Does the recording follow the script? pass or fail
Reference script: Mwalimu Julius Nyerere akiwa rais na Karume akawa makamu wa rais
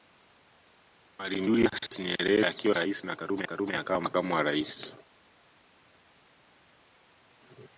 fail